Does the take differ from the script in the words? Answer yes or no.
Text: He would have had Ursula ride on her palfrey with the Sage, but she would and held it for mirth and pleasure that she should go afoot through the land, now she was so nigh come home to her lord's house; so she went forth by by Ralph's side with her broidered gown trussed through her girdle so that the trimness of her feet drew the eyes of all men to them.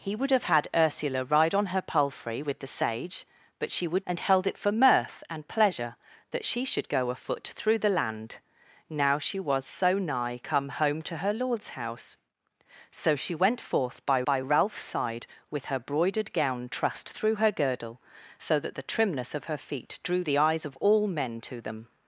no